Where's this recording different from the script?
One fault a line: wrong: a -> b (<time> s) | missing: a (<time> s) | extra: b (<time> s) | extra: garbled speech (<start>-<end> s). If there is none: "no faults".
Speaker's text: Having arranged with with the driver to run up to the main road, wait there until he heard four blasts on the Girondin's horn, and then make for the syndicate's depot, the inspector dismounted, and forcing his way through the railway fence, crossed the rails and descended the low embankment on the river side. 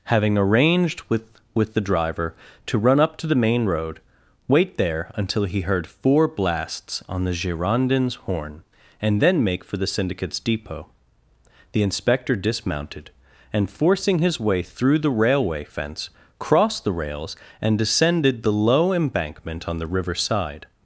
no faults